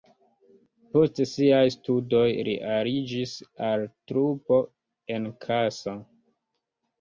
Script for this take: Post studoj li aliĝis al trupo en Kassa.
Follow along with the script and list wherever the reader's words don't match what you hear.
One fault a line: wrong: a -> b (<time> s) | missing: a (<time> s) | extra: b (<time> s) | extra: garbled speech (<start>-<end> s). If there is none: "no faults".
extra: siaj (1.3 s)